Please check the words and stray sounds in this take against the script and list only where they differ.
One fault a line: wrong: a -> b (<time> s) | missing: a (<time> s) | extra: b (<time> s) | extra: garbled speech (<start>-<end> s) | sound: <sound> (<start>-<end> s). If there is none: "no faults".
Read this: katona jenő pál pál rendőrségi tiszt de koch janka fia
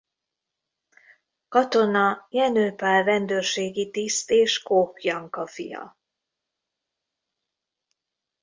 missing: pál (3.0 s)
wrong: de -> és (4.3 s)